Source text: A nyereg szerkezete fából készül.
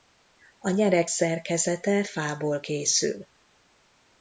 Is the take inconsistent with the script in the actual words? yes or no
no